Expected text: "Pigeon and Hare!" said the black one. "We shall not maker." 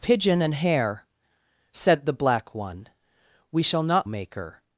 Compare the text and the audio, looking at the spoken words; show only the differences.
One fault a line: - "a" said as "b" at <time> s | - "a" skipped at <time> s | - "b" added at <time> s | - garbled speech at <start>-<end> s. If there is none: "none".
none